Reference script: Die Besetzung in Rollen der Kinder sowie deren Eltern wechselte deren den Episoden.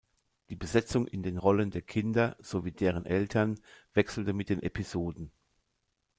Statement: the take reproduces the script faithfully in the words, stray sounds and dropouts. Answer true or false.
false